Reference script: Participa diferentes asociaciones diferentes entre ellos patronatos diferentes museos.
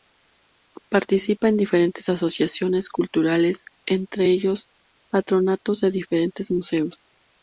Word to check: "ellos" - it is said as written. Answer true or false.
true